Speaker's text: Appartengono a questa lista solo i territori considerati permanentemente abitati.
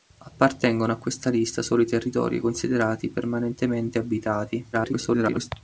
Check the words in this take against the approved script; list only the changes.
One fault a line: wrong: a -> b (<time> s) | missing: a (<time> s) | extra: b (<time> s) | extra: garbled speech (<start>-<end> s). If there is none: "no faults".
extra: garbled speech (4.7-5.5 s)